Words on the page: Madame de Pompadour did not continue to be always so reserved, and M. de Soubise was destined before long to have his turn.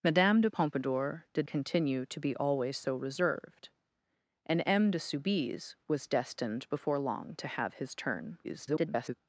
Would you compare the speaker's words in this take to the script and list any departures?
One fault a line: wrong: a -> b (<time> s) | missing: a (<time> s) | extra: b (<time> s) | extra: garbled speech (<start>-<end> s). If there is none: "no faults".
missing: not (1.5 s)
extra: garbled speech (8.4-9.1 s)